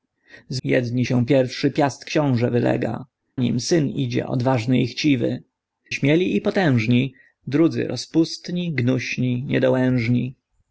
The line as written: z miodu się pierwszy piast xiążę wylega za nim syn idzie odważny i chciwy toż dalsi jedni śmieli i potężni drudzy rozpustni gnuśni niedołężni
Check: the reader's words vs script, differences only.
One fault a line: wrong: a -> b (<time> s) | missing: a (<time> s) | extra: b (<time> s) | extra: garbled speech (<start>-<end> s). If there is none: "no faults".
wrong: miodu -> jedni (0.6 s)
missing: za (3.0 s)
missing: toż dalsi jedni (5.4 s)